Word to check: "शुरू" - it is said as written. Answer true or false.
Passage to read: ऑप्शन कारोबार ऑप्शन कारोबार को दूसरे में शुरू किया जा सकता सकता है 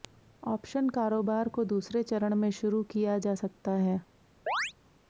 true